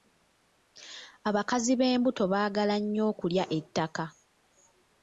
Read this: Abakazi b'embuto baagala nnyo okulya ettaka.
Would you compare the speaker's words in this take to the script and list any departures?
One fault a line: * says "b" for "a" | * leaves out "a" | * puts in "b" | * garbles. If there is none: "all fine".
all fine